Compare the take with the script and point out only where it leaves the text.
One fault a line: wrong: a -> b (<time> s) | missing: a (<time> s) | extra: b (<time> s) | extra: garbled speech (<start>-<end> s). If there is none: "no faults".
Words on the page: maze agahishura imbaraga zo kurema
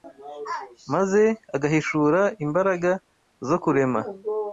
no faults